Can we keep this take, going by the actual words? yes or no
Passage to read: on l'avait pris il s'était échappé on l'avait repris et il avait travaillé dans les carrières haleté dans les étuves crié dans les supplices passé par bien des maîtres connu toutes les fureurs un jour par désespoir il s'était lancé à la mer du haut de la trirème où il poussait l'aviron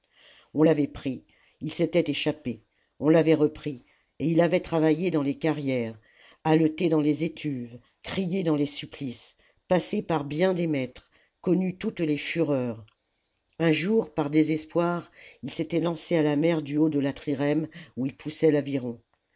yes